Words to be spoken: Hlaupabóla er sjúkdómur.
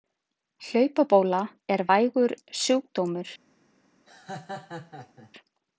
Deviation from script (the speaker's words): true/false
true